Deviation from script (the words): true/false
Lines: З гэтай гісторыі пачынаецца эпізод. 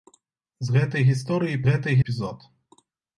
true